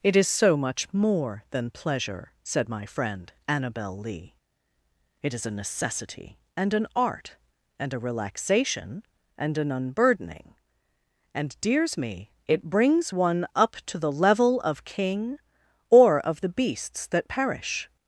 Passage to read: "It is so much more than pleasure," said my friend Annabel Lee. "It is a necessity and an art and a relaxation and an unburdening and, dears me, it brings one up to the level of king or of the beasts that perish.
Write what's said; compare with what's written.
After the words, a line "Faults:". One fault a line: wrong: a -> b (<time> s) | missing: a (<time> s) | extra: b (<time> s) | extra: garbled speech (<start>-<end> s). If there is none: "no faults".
"It is so much more than pleasure," said my friend Annabel Lee. "It is a necessity and an art and a relaxation and an unburdening and, dears me, it brings one up to the level of king or of the beasts that perish.
Faults:
no faults